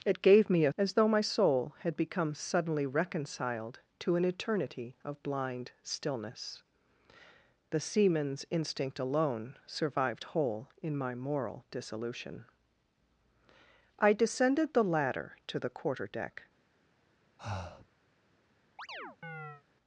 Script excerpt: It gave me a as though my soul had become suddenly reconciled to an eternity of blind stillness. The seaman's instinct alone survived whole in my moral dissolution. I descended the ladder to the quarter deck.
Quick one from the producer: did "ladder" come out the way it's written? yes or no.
yes